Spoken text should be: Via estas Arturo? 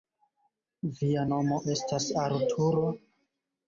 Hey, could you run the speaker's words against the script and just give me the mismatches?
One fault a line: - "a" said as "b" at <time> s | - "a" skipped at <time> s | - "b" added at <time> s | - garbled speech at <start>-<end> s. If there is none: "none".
- "nomo" added at 1.3 s